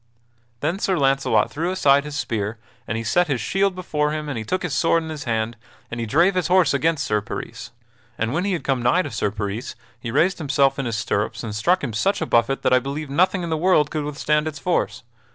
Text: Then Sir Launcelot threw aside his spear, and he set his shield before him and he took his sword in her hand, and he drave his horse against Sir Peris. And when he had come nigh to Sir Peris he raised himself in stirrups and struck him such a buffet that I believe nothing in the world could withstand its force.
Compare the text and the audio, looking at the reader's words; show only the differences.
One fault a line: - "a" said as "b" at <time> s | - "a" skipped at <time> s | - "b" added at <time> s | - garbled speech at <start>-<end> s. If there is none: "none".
- "her" said as "his" at 5.1 s
- "his" added at 10.8 s